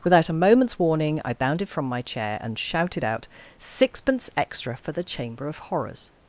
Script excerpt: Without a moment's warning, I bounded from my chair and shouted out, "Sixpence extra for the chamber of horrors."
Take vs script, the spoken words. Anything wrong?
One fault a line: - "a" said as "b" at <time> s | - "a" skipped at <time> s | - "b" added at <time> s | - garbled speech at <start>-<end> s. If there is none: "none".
none